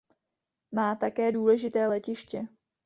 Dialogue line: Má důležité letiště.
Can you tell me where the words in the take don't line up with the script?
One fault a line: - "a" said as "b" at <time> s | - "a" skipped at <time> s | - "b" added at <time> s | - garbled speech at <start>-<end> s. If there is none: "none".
- "také" added at 0.9 s